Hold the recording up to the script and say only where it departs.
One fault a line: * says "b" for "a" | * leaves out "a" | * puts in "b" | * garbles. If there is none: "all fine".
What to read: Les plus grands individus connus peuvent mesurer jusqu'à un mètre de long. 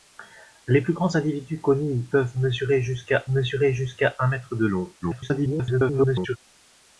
* puts in "mesurer jusqu'à"
* garbles